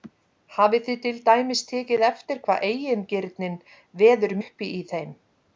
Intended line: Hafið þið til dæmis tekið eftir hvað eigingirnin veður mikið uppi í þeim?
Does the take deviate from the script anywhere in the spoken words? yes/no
yes